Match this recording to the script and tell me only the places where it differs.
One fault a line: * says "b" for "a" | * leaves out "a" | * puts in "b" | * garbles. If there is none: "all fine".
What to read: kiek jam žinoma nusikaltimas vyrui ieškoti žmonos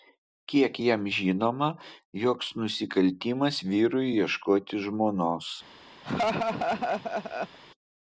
* puts in "joks"